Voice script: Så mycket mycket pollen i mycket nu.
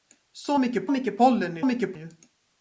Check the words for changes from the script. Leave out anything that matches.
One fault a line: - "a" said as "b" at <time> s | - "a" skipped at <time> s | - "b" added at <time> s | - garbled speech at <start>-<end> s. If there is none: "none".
none